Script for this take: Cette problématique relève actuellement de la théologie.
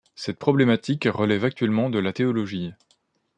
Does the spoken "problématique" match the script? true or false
true